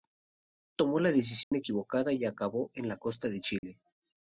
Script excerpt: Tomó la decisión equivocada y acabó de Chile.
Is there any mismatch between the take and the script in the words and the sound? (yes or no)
yes